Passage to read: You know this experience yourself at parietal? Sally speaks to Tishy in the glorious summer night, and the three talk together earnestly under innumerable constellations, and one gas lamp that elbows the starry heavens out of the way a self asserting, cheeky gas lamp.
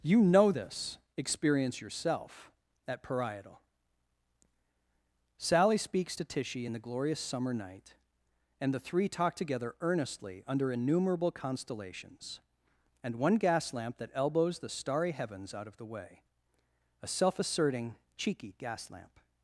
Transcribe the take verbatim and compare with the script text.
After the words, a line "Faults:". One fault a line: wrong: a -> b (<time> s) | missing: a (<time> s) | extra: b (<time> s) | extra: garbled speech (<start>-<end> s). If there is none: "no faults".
You know this experience yourself at parietal? Sally speaks to Tishy in the glorious summer night, and the three talk together earnestly under innumerable constellations, and one gas lamp that elbows the starry heavens out of the way a self asserting, cheeky gas lamp.
Faults:
no faults